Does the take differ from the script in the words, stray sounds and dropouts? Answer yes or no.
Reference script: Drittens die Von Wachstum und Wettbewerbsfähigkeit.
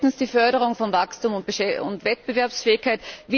yes